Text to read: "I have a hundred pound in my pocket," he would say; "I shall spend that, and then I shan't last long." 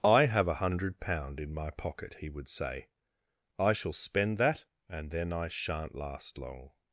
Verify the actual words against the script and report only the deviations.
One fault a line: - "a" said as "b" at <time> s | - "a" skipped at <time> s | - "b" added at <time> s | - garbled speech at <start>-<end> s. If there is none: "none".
none